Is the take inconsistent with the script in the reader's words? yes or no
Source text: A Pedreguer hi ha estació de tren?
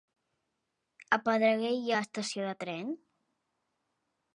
no